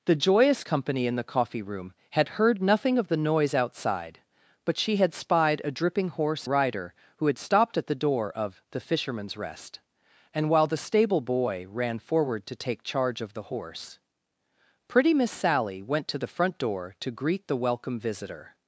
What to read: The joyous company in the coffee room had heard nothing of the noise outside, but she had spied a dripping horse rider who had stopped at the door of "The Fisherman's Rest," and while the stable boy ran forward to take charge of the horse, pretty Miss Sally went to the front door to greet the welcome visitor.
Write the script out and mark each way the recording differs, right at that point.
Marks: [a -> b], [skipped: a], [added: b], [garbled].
The joyous company in the coffee room had heard nothing of the noise outside, but she had spied a dripping horse rider who had stopped at the door of "The Fisherman's Rest," and while the stable boy ran forward to take charge of the horse, pretty Miss Sally went to the front door to greet the welcome visitor.